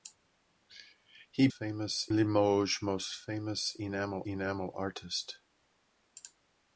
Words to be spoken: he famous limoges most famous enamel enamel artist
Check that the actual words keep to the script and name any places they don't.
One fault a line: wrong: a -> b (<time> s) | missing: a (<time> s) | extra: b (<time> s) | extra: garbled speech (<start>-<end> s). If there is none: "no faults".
no faults